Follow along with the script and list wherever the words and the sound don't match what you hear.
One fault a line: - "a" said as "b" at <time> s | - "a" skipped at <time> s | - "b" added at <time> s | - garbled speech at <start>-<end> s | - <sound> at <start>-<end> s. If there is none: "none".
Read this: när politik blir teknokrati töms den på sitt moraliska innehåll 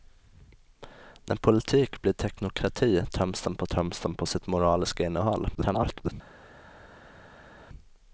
- "töms den på" added at 3.7 s
- garbled speech at 5.5-6.1 s